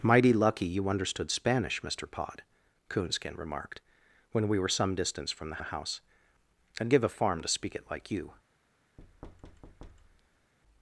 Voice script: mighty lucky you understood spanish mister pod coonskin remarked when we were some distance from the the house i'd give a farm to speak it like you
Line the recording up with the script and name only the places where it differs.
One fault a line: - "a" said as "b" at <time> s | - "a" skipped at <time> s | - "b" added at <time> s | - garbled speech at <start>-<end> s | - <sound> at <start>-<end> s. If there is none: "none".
- thud at 9.0-10.5 s